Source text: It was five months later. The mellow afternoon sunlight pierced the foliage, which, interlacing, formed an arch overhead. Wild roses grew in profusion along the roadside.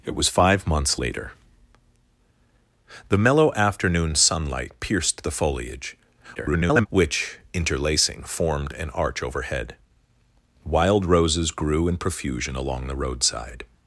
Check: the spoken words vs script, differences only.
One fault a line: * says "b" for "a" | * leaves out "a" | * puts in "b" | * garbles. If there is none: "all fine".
* garbles